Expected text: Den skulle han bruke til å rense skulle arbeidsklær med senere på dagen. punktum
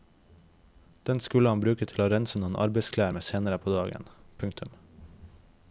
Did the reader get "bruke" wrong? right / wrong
right